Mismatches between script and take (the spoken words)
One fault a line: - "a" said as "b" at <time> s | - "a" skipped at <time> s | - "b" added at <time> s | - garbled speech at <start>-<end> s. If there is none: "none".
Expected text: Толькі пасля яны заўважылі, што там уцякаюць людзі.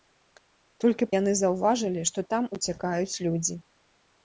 - "пасля" skipped at 1.1 s